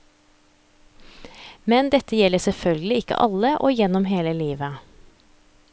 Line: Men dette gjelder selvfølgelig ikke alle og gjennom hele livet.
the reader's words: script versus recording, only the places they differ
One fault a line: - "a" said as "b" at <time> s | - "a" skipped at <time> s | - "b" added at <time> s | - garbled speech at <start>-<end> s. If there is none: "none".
none